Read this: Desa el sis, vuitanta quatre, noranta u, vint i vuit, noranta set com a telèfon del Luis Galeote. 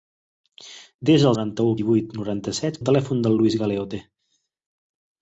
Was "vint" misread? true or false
true